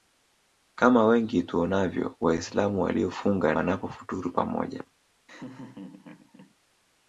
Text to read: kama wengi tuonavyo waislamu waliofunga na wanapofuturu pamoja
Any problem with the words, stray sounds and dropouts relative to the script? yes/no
yes